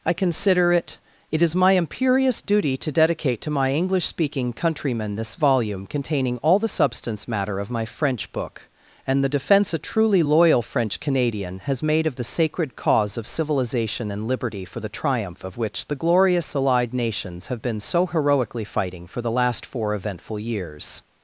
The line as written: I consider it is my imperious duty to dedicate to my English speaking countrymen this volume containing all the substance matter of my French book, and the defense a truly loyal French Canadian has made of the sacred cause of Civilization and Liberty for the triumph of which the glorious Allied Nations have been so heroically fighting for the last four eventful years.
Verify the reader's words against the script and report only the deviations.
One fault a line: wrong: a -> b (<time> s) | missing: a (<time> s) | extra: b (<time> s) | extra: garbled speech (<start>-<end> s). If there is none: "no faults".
extra: it (1.3 s)